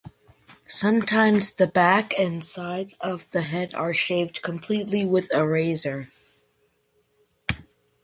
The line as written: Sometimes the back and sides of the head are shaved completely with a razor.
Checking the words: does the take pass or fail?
pass